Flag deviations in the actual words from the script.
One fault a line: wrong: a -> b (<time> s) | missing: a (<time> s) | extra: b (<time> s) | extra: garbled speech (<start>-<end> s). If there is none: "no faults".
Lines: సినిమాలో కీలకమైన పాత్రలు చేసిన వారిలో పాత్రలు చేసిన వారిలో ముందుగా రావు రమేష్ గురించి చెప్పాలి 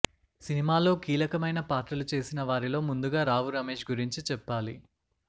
missing: పాత్రలు చేసిన వారిలో (2.8 s)